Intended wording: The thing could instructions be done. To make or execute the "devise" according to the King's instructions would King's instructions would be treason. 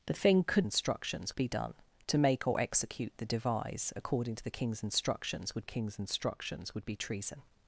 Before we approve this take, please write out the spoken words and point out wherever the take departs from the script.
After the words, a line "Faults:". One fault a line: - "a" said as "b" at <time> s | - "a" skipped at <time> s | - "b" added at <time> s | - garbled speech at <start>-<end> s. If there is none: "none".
The thing could instructions be done. To make or execute the "devise" according to the King's instructions would King's instructions would be treason.
Faults:
none